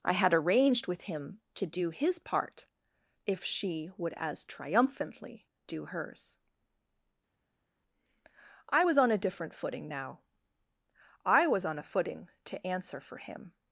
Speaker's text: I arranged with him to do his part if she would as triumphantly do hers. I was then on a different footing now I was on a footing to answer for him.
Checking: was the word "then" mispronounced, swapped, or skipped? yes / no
yes